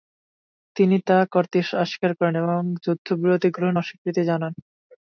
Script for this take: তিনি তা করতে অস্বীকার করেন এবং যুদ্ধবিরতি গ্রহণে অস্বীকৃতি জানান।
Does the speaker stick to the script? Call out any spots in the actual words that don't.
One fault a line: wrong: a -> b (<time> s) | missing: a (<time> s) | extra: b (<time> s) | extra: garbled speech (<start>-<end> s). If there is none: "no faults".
no faults